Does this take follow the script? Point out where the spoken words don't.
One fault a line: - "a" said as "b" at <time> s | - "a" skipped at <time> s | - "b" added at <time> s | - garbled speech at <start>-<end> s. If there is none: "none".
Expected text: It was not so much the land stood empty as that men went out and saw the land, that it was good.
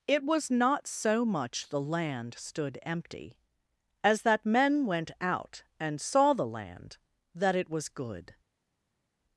none